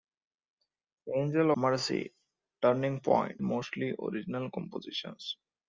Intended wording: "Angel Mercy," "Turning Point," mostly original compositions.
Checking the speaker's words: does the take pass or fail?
pass